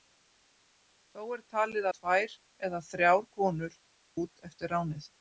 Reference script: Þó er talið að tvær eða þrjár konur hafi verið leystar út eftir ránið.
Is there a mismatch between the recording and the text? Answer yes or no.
yes